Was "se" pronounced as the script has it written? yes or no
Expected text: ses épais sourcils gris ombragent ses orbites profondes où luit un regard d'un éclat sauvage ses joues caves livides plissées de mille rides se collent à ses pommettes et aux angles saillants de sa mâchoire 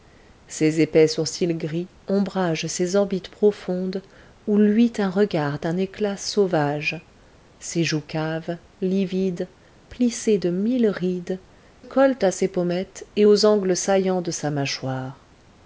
no